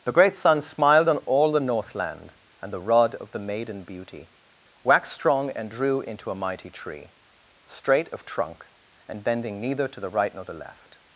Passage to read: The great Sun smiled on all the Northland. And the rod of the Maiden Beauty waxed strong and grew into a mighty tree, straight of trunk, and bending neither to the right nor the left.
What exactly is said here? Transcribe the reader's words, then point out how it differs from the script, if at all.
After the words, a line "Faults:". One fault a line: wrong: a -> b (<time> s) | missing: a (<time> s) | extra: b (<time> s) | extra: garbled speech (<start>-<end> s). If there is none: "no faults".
The great Sun smiled on all the Northland. And the rod of the Maiden Beauty waxed strong and drew into a mighty tree, straight of trunk, and bending neither to the right nor the left.
Faults:
wrong: grew -> drew (5.7 s)